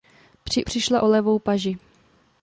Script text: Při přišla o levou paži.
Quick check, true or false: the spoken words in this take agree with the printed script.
true